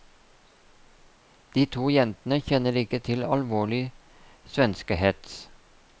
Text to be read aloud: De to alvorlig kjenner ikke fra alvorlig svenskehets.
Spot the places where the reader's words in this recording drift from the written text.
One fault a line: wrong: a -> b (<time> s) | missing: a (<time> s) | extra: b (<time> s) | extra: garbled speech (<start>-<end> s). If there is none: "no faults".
wrong: alvorlig -> jentene (1.9 s)
wrong: fra -> til (3.1 s)